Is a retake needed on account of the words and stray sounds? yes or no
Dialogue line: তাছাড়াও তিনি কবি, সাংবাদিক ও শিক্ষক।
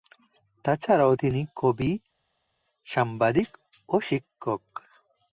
no